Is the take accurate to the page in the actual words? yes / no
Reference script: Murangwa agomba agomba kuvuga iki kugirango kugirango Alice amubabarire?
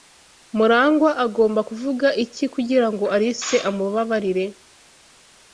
no